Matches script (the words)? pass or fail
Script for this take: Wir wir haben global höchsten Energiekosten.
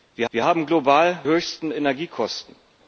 pass